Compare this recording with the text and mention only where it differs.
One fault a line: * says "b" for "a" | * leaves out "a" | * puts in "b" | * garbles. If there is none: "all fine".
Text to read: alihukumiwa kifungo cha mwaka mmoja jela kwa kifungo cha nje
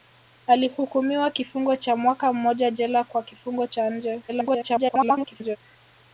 * garbles